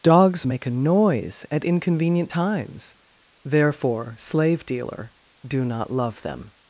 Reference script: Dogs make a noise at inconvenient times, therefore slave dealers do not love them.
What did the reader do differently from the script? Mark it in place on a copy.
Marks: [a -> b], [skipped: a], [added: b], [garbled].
Dogs make a noise at inconvenient times, therefore slave [dealers -> dealer] do not love them.